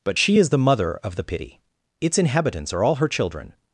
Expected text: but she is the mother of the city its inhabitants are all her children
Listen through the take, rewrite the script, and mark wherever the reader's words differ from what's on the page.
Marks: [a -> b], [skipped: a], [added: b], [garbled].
but she is the mother of the [city -> pity] its inhabitants are all her children